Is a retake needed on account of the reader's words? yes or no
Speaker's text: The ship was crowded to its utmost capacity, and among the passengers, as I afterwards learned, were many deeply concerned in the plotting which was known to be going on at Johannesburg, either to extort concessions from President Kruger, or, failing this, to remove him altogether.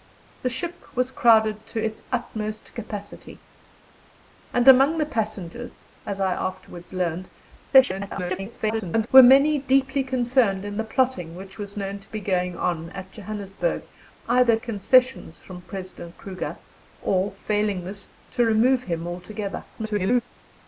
yes